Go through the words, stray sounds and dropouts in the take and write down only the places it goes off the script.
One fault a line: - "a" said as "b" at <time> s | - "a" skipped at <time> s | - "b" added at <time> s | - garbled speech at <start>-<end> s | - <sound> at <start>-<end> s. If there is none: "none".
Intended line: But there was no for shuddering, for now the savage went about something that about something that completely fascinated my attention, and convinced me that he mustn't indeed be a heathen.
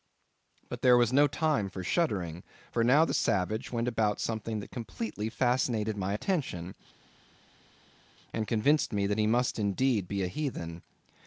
- "time" added at 1.3 s
- "about something that" skipped at 4.7 s
- "mustn't" said as "must" at 9.3 s